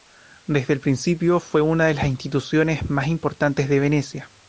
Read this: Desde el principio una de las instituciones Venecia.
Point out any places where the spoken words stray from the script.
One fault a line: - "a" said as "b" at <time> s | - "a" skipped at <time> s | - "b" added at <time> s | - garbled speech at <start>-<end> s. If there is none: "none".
- "fue" added at 1.4 s
- "más importantes de" added at 2.9 s